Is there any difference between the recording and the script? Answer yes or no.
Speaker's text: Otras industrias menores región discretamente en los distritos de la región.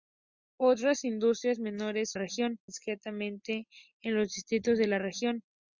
no